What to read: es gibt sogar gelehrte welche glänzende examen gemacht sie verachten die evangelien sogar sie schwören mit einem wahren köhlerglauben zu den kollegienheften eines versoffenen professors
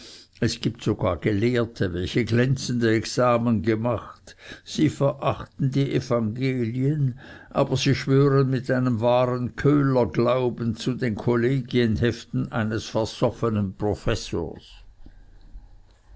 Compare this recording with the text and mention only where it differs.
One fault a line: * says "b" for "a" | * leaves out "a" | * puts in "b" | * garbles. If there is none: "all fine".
* says "aber" for "sogar"